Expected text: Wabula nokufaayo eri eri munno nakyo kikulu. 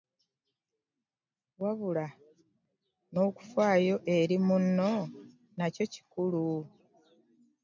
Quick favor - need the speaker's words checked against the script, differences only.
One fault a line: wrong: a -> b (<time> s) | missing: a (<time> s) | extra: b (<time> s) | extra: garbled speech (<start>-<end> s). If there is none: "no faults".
missing: eri (4.4 s)